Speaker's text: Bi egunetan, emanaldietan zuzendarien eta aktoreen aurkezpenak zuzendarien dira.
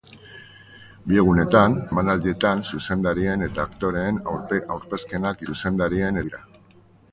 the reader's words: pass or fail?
pass